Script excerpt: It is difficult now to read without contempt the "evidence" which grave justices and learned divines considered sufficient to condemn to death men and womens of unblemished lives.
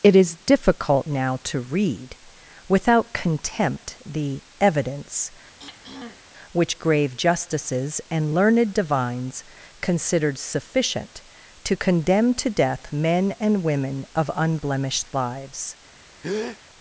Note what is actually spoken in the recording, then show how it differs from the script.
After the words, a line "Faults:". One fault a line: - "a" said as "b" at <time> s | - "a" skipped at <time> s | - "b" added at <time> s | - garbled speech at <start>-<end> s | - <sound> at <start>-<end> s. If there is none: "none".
It is difficult now to read without contempt the "evidence" which grave justices and learned divines considered sufficient to condemn to death men and women of unblemished lives.
Faults:
- throat clearing at 5.6-6.2 s
- "womens" said as "women" at 13.6 s
- breath at 16.2-16.6 s